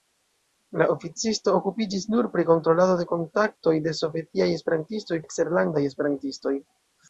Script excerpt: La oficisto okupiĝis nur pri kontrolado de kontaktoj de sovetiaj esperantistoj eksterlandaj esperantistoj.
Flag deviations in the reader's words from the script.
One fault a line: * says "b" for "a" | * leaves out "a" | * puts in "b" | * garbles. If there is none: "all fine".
all fine